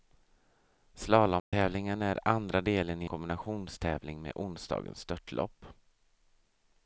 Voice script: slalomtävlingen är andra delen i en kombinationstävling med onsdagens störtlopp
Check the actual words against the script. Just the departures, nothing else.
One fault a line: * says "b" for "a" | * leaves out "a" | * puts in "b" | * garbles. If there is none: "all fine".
* leaves out "en"